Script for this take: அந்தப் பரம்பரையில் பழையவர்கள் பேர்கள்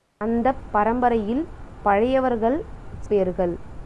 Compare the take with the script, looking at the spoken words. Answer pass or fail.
pass